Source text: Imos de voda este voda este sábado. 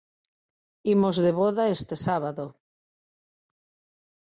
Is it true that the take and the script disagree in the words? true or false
true